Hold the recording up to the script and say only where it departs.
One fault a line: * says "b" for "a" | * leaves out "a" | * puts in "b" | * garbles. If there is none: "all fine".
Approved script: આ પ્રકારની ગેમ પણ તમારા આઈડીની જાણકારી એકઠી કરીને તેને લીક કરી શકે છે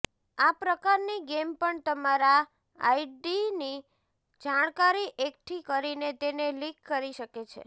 all fine